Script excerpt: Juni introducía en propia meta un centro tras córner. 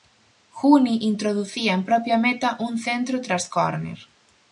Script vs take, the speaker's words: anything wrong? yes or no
no